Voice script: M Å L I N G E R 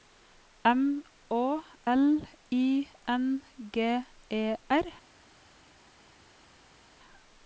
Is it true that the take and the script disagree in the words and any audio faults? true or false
false